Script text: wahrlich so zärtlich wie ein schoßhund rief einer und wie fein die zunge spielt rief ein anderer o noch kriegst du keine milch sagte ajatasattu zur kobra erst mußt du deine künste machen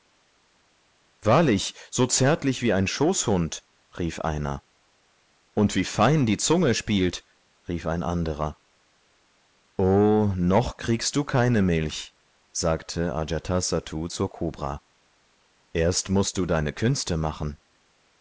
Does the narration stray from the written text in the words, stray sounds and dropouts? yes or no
no